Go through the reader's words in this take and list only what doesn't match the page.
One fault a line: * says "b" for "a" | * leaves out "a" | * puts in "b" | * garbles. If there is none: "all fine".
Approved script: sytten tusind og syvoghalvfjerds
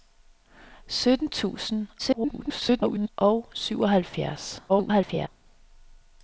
* garbles
* garbles